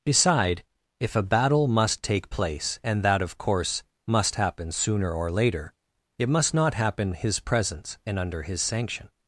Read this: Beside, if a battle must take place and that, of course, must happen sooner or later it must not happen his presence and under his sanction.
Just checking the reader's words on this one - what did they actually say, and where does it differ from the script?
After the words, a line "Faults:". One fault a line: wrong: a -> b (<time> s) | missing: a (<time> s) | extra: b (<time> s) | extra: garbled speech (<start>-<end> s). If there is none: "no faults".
Beside, if a battle must take place and that, of course, must happen sooner or later it must not happen his presence and under his sanction.
Faults:
no faults